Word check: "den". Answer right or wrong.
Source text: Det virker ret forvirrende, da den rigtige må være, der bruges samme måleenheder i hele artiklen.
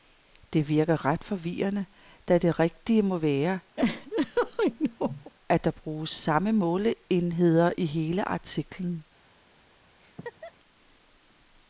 wrong